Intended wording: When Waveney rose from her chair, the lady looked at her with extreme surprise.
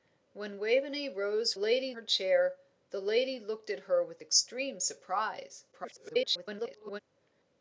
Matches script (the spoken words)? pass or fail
fail